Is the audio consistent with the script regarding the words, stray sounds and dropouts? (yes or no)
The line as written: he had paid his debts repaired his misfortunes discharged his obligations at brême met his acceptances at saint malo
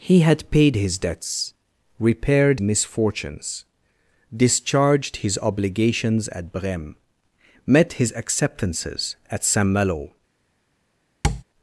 no